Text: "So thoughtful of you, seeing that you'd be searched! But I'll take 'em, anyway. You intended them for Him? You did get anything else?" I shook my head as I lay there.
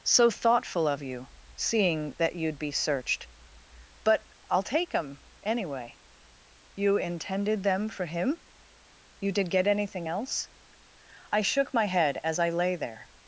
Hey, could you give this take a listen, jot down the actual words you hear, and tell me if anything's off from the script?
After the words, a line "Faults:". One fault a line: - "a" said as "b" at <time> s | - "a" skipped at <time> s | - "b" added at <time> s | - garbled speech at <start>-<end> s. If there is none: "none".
"So thoughtful of you, seeing that you'd be searched! But I'll take 'em, anyway. You intended them for Him? You did get anything else?" I shook my head as I lay there.
Faults:
none